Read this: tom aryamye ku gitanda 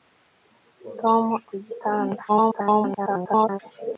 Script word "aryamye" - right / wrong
wrong